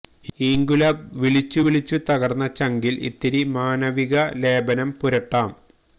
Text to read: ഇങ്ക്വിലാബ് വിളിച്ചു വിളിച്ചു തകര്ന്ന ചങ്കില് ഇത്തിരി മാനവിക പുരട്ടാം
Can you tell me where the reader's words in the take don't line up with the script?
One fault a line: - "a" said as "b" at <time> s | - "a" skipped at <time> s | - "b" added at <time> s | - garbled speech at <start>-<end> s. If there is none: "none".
- "ലേപനം" added at 4.4 s